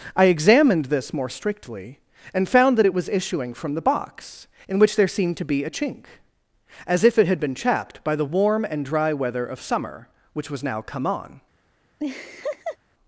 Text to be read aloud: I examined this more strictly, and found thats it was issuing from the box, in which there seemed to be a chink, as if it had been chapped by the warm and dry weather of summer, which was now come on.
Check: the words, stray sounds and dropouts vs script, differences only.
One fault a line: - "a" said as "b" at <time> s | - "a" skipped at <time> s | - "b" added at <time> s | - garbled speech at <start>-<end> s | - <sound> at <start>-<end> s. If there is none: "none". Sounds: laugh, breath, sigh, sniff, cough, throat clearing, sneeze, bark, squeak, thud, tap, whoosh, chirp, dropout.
- "thats" said as "that" at 2.8 s
- laugh at 12.0-12.8 s